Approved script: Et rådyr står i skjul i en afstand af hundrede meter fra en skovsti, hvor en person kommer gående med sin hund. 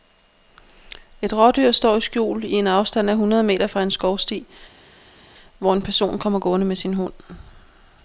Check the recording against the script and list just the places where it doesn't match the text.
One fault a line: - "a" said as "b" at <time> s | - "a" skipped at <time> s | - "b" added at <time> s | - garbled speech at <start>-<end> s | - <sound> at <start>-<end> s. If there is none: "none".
none